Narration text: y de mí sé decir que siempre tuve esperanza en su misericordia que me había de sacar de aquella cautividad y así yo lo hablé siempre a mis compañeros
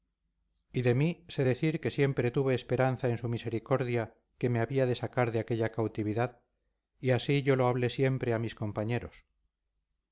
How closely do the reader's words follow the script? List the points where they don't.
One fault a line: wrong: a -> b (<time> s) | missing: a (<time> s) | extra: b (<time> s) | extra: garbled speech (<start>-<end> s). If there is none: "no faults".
no faults